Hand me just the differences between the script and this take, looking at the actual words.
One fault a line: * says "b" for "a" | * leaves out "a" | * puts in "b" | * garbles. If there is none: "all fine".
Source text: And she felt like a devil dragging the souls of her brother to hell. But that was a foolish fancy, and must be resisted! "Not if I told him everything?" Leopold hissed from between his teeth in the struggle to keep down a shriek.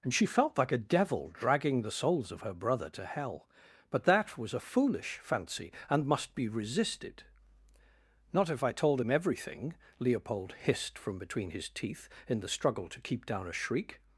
all fine